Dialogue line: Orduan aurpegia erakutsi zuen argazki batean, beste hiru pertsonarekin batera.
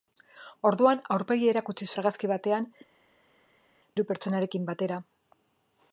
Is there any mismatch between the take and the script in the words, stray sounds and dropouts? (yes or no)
yes